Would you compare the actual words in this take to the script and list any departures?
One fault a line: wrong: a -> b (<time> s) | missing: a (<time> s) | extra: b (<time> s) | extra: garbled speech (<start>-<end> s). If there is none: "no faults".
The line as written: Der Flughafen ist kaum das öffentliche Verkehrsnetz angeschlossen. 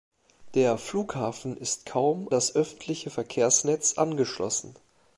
no faults